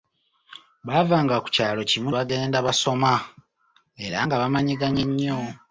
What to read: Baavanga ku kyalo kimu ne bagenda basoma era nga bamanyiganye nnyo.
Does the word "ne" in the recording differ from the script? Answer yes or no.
yes